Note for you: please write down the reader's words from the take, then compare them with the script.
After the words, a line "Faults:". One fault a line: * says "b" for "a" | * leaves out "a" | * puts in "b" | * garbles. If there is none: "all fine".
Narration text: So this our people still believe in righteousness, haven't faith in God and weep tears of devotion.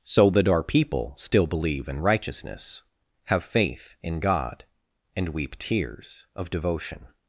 So that our people still believe in righteousness, have faith in God and weep tears of devotion.
Faults:
* says "that" for "this"
* says "have" for "haven't"